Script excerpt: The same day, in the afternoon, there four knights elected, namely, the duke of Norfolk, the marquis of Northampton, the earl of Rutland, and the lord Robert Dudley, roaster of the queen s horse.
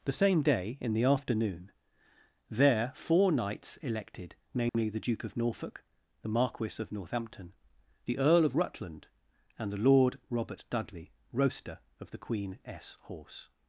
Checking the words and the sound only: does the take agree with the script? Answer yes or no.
no